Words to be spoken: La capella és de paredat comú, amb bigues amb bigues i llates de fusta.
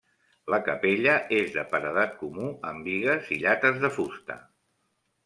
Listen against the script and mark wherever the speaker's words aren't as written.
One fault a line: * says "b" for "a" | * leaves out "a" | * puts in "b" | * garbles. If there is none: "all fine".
* leaves out "amb bigues"